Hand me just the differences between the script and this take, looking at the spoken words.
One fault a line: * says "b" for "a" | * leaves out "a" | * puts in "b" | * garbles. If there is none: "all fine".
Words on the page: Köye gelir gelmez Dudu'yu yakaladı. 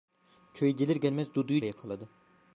all fine